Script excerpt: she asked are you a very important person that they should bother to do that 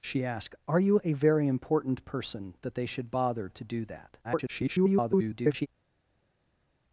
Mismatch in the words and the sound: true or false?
true